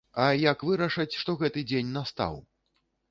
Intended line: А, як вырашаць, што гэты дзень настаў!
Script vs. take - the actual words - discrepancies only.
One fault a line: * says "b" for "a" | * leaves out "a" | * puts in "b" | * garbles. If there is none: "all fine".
all fine